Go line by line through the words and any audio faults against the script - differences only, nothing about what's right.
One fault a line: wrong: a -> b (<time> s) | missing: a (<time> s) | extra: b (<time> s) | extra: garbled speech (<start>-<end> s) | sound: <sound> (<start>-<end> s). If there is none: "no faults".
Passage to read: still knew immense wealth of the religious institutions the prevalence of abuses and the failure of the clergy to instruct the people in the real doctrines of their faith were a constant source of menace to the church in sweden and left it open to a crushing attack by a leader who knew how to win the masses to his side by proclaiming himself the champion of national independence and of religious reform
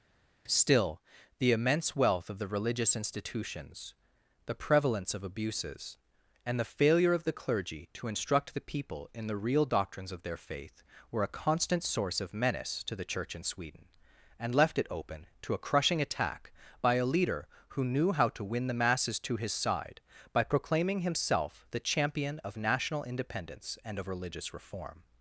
wrong: knew -> the (1.4 s)